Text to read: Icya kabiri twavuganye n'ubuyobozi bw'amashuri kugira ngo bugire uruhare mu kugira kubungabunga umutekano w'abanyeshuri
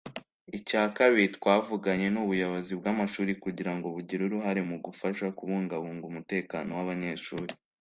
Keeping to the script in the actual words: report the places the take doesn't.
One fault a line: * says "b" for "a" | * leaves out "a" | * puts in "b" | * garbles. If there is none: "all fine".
* says "gufasha" for "kugira"